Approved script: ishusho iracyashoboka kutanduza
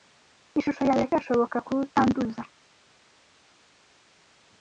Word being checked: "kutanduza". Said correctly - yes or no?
yes